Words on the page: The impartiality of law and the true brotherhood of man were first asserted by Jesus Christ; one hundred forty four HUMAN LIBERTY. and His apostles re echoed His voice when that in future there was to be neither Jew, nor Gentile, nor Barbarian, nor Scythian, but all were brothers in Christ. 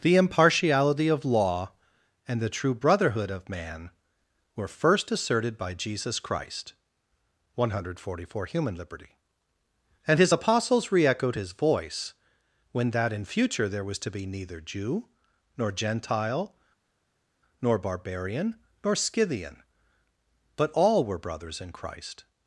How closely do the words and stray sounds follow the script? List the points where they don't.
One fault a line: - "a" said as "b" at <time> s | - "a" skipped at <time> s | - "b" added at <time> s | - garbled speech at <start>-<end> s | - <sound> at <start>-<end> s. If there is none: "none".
none